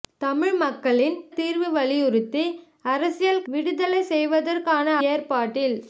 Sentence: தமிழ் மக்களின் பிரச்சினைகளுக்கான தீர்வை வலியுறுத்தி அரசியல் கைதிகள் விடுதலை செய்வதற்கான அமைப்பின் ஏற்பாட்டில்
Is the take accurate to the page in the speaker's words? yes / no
no